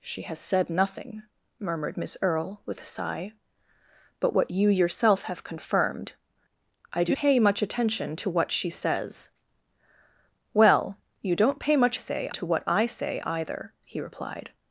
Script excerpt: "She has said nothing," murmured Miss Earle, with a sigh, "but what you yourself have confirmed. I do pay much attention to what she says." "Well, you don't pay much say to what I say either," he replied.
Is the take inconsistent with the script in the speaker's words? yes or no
no